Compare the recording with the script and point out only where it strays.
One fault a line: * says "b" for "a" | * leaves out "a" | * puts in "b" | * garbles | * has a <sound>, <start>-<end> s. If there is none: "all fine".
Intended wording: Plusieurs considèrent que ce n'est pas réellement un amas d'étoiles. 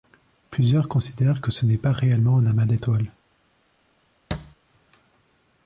* has a thud, 4.3-4.6 s